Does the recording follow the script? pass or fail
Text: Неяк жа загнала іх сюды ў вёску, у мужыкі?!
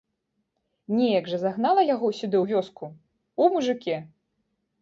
fail